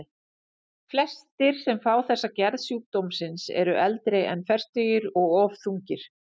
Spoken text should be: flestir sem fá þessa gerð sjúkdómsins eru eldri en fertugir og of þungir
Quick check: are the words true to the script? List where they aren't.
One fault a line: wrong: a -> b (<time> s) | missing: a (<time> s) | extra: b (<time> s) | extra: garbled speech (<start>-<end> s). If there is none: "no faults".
no faults